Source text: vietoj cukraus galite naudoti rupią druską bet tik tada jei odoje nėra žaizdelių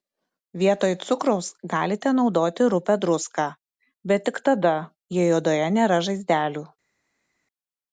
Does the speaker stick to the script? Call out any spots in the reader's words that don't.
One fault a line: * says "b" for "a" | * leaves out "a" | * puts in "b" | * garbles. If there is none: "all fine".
all fine